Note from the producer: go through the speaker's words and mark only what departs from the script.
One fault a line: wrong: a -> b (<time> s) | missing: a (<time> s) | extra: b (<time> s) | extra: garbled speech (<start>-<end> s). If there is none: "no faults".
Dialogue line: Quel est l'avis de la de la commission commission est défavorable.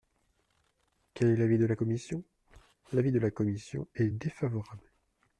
extra: commission L'avis (1.7 s)
missing: commission (3.9 s)